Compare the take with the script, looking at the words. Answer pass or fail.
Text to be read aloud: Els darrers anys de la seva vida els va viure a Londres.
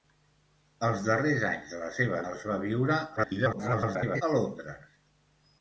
fail